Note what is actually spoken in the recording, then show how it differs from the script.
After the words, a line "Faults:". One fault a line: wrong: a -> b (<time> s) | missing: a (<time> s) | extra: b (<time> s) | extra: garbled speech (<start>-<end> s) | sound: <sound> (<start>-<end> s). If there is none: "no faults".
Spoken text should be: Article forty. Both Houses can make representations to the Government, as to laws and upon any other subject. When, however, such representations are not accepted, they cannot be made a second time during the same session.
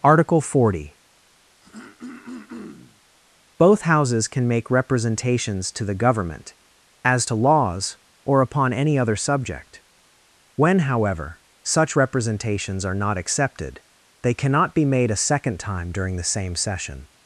Article forty. Both Houses can make representations to the Government, as to laws or upon any other subject. When, however, such representations are not accepted, they cannot be made a second time during the same session.
Faults:
sound: throat clearing (1.6-3.0 s)
wrong: and -> or (8.3 s)